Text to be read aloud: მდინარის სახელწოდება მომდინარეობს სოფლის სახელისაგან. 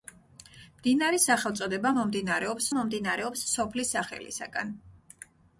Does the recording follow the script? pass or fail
fail